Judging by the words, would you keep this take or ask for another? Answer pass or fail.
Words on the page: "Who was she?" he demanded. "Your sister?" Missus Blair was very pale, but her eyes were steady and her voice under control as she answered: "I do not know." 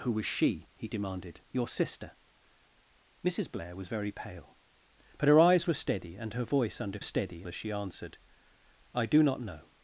fail